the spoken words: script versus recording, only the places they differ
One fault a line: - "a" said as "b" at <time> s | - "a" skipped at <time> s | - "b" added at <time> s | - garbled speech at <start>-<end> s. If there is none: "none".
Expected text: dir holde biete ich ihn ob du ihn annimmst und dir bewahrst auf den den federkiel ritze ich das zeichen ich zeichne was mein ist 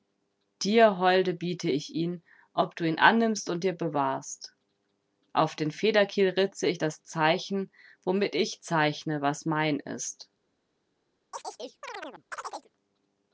- "den" skipped at 5.7 s
- "womit" added at 8.0 s